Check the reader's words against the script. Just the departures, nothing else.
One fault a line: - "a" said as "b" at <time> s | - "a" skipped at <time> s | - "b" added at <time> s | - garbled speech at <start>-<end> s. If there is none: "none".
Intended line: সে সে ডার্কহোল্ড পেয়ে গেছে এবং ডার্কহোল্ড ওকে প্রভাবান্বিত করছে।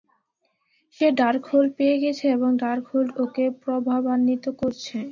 - "সে" skipped at 1.1 s